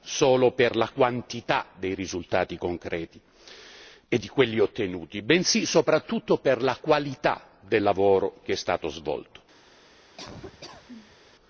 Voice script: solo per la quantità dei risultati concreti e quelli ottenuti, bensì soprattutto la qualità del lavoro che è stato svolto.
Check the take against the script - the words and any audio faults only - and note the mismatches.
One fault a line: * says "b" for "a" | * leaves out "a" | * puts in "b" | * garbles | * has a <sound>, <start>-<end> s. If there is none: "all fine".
* puts in "di"
* puts in "per"
* has a laugh, 10.2-11.2 s